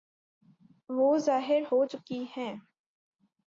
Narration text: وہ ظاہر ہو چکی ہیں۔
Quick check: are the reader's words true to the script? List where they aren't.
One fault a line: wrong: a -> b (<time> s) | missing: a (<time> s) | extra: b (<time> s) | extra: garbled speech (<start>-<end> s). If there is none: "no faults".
no faults